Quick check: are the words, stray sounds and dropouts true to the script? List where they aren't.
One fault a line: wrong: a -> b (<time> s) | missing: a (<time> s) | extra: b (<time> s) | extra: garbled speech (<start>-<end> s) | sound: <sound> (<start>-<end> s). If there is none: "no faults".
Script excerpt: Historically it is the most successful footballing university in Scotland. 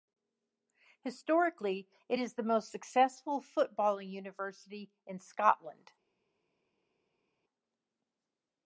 no faults